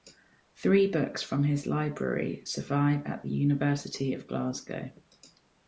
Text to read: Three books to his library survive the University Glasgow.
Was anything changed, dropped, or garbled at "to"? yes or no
yes